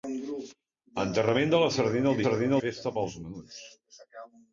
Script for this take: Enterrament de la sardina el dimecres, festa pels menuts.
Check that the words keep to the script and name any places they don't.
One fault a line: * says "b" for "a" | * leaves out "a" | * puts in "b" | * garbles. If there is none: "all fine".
* says "sardina" for "dimecres"